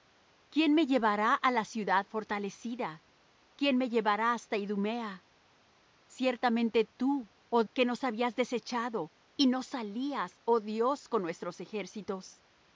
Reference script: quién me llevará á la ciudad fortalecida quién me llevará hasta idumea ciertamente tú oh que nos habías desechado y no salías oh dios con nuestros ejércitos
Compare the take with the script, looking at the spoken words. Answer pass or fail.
pass